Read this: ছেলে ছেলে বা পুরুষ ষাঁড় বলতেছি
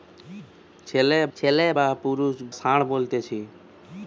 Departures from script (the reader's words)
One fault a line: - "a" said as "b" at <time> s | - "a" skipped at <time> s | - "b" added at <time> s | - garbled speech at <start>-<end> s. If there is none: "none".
none